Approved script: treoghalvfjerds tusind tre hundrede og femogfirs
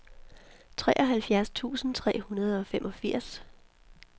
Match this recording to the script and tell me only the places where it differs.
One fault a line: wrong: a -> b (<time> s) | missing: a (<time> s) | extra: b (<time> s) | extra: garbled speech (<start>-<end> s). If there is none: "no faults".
no faults